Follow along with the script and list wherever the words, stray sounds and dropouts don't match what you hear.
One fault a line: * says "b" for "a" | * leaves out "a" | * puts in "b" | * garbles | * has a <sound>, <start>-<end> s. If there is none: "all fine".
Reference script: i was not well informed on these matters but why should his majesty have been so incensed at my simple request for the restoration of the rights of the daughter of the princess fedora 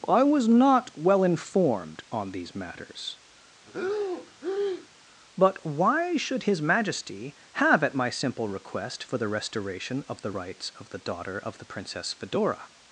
* has a breath, 3.7-4.9 s
* leaves out "been so incensed"